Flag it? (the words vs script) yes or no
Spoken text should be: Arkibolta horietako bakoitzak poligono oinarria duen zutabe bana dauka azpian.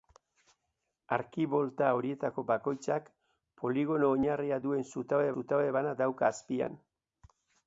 yes